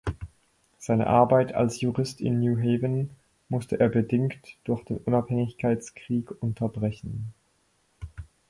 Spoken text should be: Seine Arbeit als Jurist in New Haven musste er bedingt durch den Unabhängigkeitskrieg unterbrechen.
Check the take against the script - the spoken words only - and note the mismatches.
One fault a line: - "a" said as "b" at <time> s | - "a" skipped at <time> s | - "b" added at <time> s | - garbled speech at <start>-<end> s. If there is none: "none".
none